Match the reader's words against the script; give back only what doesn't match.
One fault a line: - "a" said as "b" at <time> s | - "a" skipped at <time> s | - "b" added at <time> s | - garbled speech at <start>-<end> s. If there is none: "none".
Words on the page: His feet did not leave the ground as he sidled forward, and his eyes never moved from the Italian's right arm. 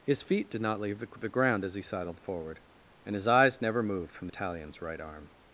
- "the" skipped at 4.3 s